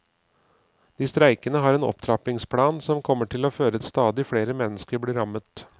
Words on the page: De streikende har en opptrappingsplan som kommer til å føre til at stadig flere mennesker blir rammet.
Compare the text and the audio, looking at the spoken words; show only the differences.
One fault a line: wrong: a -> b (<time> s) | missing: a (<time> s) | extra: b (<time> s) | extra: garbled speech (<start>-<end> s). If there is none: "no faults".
missing: til (3.8 s)